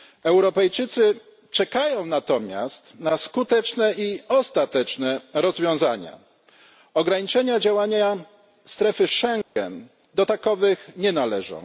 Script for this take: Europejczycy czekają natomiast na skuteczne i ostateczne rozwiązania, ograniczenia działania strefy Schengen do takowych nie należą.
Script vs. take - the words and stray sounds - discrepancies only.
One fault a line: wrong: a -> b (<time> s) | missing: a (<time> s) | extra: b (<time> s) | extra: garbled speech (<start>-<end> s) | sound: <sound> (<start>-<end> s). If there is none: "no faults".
sound: dropout (9.4-9.6 s)